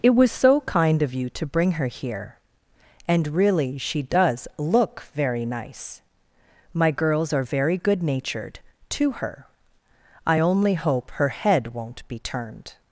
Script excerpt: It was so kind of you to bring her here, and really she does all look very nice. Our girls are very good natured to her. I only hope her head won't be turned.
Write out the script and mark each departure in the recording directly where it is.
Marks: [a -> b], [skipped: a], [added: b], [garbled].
It was so kind of you to bring her here, and really she does [skipped: all] look very nice. [Our -> My] girls are very good natured to her. I only hope her head won't be turned.